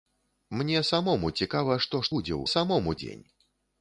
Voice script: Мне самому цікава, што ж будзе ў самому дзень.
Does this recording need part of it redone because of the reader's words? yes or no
no